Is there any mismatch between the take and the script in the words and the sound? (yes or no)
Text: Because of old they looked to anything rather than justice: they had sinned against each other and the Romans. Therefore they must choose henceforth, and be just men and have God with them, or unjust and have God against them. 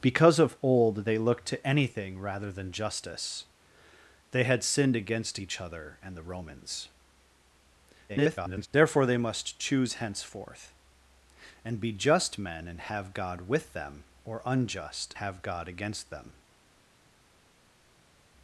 yes